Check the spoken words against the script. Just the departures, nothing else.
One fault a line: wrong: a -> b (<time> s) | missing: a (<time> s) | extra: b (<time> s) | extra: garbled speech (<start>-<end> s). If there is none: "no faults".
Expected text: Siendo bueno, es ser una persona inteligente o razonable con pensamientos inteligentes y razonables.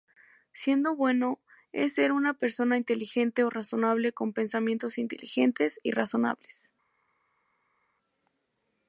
no faults